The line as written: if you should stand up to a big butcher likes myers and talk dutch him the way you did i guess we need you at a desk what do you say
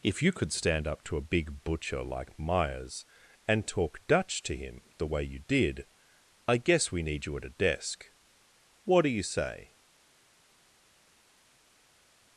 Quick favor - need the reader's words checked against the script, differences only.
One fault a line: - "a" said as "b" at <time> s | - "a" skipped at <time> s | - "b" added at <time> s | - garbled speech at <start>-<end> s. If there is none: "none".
- "should" said as "could" at 0.3 s
- "likes" said as "like" at 2.0 s
- "to" added at 4.4 s